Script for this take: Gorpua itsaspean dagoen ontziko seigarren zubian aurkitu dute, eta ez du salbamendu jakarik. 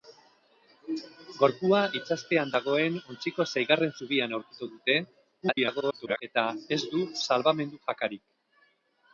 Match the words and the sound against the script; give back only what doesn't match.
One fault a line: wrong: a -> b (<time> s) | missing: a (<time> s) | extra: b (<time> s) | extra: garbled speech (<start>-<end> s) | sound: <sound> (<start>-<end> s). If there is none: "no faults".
extra: garbled speech (5.4-6.2 s)